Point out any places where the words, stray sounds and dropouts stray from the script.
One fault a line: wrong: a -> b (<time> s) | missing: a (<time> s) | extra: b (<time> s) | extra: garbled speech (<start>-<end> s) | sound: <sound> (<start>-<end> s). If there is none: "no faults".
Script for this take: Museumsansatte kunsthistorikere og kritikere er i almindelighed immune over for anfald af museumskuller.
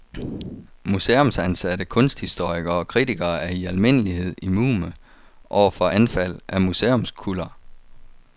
no faults